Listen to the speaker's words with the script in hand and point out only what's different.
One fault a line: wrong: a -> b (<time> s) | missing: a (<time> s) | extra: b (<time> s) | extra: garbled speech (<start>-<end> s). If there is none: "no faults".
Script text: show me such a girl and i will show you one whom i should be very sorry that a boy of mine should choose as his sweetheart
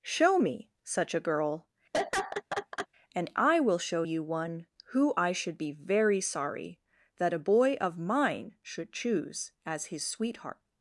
wrong: whom -> who (4.9 s)